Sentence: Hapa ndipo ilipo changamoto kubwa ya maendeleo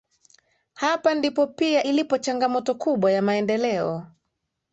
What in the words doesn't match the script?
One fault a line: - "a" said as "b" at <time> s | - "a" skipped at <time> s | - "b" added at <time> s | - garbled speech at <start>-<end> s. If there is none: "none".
- "pia" added at 1.5 s